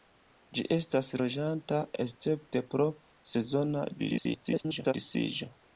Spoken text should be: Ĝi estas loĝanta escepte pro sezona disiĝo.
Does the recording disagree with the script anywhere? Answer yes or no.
yes